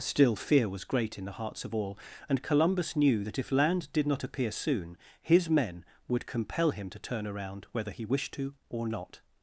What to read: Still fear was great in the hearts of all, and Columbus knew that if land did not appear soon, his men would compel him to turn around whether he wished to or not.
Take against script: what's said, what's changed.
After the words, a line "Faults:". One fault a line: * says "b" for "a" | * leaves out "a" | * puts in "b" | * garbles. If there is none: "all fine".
Still fear was great in the hearts of all, and Columbus knew that if land did not appear soon, his men would compel him to turn around whether he wished to or not.
Faults:
all fine